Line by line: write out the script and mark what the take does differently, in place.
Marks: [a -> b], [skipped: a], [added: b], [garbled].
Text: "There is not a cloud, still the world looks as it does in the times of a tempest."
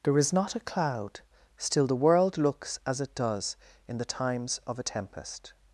"There is not a cloud, still the world looks as it does in the times of a tempest."